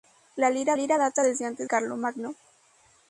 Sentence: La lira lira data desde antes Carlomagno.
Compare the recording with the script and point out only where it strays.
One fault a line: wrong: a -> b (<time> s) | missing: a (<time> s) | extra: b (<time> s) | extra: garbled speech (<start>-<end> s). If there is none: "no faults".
no faults